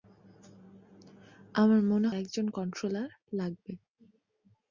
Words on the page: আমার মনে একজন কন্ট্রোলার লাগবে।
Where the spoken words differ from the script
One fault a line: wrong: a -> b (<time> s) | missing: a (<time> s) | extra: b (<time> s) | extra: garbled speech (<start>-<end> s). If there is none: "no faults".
no faults